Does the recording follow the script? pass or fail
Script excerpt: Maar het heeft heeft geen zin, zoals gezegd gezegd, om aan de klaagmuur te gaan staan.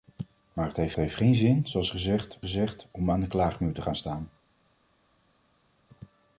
pass